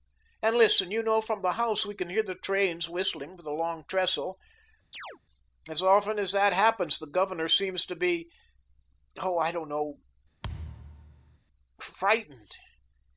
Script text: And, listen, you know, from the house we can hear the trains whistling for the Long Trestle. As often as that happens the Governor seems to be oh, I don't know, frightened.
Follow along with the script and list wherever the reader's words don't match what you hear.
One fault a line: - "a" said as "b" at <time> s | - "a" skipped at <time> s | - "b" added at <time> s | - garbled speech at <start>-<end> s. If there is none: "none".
none